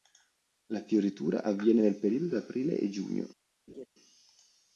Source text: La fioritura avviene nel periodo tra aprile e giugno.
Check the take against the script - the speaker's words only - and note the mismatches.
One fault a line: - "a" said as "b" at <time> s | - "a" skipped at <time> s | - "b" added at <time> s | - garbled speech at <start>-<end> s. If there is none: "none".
none